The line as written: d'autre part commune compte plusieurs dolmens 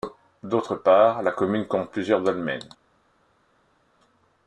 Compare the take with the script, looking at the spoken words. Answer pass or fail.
fail